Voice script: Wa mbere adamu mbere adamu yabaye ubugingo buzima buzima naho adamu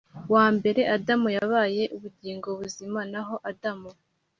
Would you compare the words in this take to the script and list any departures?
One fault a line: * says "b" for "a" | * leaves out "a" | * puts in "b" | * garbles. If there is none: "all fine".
* leaves out "mbere adamu"
* leaves out "buzima"